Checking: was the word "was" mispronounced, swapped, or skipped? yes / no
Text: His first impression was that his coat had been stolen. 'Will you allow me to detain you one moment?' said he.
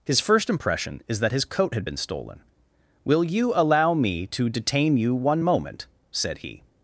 yes